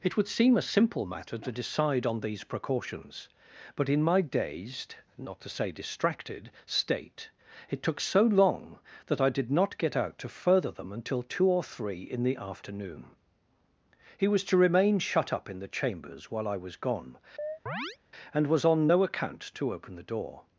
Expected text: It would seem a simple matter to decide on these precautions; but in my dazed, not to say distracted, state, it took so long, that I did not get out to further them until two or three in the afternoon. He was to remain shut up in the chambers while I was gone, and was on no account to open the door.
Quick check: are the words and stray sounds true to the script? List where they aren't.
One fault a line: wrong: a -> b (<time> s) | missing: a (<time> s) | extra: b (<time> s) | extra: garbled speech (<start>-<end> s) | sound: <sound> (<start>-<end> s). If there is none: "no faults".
sound: chirp (17.4-18.0 s)